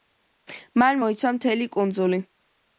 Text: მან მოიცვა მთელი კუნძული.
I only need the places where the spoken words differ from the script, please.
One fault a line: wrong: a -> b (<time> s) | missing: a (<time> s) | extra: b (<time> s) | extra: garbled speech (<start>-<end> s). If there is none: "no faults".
no faults